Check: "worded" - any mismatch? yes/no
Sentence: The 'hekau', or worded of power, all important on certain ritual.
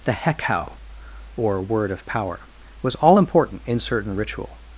yes